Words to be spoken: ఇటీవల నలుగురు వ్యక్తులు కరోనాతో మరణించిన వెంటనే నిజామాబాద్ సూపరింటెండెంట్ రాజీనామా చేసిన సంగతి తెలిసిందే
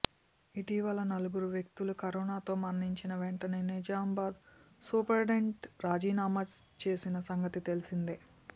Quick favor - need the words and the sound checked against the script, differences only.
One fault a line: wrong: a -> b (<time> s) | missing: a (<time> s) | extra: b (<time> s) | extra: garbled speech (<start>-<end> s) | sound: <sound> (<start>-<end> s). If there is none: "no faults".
no faults